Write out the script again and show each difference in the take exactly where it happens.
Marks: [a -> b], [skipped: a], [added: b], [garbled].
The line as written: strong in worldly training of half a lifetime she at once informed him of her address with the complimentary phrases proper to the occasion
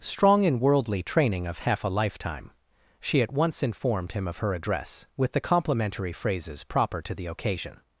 strong in worldly training of half a lifetime she at once informed him of her address with the complimentary phrases proper to the occasion